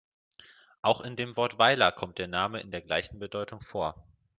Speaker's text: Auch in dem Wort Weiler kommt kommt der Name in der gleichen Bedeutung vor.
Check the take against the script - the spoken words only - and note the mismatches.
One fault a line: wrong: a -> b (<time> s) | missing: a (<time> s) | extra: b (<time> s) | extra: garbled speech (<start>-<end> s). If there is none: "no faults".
missing: kommt (2.2 s)